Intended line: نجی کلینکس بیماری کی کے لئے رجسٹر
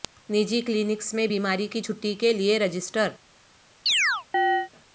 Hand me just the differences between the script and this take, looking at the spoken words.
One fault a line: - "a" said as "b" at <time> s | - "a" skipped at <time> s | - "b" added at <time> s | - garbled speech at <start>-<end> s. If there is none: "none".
- "میں" added at 1.1 s
- "چھٹی" added at 1.8 s